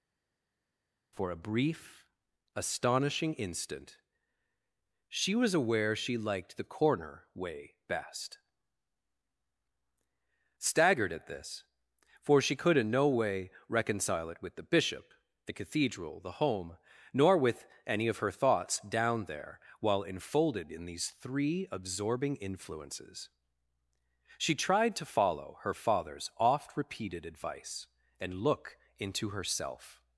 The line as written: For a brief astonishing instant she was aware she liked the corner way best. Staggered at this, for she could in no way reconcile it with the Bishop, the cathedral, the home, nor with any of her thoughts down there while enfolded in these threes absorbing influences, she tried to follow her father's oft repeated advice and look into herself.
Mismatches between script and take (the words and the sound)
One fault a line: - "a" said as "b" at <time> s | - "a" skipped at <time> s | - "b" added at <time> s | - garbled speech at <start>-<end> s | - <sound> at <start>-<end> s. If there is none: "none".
- "threes" said as "three" at 21.1 s